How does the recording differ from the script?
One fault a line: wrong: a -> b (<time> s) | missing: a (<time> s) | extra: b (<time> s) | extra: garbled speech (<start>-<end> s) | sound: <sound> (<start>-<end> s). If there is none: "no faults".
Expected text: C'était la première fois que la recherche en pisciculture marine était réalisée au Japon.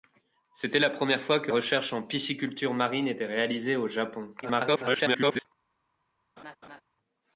missing: la (1.5 s)
extra: garbled speech (4.4-5.5 s)
sound: laugh (6.4-6.8 s)